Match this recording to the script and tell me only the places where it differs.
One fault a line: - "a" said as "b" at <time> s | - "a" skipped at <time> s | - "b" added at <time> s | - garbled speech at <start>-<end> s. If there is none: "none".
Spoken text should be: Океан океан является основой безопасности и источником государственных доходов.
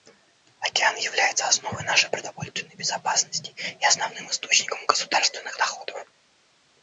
- "океан" skipped at 0.9 s
- "нашей продовольственной" added at 1.8 s
- "основным" added at 3.9 s